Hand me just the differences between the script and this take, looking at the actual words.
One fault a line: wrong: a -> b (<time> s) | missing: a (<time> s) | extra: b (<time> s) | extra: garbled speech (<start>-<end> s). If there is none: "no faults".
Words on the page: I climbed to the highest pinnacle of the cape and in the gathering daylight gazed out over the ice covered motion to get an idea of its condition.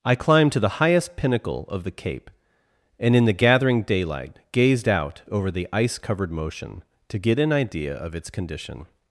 no faults